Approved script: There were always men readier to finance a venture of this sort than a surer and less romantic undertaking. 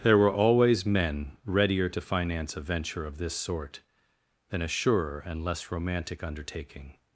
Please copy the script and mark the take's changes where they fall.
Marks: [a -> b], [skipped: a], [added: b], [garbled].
There were always men readier to finance a venture of this sort than a surer and less romantic undertaking.